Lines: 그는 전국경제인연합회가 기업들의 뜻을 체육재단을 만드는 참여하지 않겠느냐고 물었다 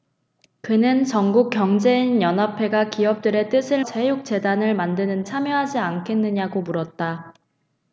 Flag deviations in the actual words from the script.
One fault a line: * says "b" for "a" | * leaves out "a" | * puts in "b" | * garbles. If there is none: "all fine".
all fine